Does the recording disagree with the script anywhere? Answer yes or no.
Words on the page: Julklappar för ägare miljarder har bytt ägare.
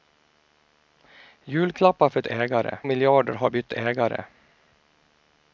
no